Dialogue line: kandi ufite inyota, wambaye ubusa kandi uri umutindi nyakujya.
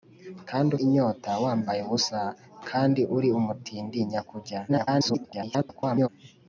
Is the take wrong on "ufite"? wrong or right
wrong